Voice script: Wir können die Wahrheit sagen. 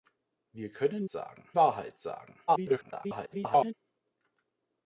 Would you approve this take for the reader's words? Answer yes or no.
no